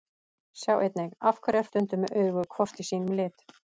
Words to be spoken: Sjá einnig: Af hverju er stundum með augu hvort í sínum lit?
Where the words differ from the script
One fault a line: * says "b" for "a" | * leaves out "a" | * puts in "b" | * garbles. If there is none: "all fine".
all fine